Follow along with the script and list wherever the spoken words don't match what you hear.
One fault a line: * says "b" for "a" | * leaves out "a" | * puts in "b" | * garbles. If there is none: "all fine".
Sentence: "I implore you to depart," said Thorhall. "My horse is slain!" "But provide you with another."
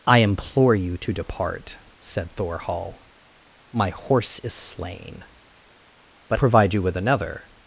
all fine